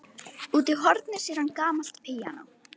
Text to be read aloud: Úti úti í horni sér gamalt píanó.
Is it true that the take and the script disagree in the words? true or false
true